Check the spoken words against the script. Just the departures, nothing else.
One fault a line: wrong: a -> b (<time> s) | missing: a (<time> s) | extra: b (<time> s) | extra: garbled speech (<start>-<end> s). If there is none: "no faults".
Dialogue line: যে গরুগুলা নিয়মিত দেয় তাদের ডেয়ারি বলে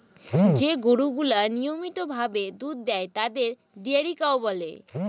extra: ভাবে দুধ (2.1 s)
extra: কাউ (4.2 s)